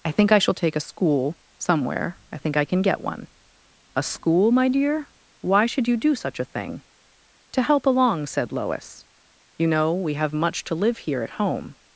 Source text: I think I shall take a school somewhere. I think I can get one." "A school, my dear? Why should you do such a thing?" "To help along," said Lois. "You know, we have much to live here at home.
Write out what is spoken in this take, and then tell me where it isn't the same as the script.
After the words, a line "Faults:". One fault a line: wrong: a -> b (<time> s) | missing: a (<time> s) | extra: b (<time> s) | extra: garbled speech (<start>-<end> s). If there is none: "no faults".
I think I shall take a school somewhere. I think I can get one." "A school, my dear? Why should you do such a thing?" "To help along," said Lois. "You know, we have much to live here at home.
Faults:
no faults